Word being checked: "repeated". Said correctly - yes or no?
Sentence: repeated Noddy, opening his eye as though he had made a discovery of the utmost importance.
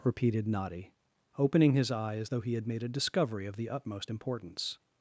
yes